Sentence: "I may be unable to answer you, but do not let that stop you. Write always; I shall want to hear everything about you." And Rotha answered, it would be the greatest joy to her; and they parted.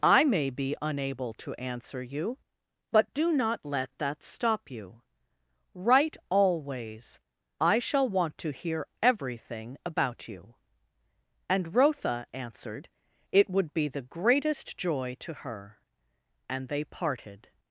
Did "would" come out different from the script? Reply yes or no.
no